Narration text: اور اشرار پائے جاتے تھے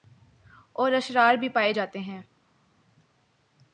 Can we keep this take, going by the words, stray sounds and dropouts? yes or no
no